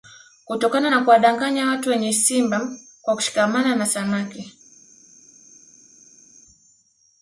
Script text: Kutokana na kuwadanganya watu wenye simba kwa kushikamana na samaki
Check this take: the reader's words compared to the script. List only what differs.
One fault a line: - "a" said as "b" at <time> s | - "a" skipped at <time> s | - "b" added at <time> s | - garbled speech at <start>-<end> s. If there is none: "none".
none